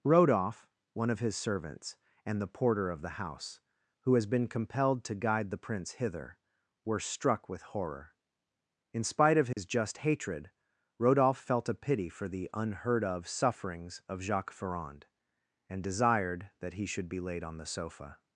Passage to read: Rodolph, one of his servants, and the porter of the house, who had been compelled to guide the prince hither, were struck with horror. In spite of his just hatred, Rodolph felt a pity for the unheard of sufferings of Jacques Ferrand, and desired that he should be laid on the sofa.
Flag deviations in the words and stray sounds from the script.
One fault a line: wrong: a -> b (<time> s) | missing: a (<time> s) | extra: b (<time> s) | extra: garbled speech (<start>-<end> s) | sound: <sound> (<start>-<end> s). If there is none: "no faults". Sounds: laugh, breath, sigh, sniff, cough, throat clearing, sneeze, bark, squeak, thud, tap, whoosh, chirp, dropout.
wrong: had -> has (4.2 s)
sound: dropout (9.5-9.6 s)